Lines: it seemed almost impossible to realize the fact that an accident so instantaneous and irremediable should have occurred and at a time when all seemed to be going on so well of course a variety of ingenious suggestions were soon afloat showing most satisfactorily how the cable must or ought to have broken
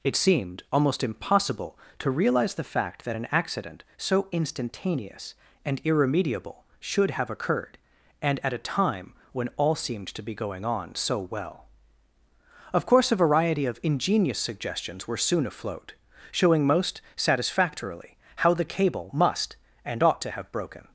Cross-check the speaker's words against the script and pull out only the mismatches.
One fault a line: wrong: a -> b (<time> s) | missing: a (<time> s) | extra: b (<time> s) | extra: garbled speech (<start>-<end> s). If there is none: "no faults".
wrong: or -> and (19.9 s)